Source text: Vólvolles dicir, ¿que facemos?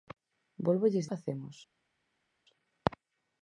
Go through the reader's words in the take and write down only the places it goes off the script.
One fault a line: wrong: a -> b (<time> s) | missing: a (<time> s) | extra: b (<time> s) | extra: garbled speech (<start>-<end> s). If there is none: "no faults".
missing: dicir que (1.1 s)